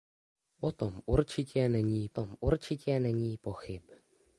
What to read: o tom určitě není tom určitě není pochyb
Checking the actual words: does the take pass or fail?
pass